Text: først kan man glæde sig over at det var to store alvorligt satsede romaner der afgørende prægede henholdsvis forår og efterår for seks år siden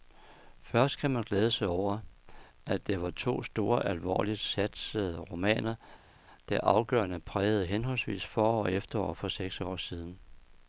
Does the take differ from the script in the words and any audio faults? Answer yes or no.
no